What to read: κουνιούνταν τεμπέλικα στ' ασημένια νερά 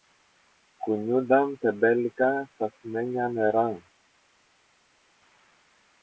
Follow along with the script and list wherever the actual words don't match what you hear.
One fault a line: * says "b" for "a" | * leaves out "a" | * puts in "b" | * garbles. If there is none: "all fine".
all fine